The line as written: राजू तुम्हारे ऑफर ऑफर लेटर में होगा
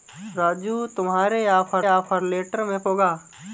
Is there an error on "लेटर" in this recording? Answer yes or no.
no